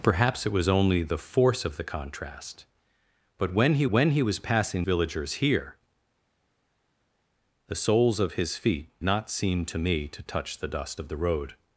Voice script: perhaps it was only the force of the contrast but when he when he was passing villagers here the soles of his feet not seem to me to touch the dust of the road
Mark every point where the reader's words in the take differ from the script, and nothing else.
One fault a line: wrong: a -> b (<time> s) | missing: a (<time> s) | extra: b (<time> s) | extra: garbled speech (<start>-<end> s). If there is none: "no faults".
no faults